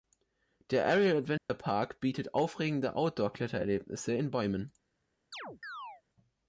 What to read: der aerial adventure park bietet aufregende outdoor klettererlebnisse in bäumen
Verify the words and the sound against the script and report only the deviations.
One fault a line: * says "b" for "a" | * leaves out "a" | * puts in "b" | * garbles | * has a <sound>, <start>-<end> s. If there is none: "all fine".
* has a dropout, 1.4-1.5 s
* has a chirp, 5.3-6.0 s